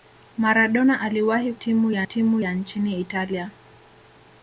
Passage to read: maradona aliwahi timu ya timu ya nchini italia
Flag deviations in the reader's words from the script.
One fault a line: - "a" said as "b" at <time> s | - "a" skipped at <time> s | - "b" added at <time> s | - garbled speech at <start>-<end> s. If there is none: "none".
none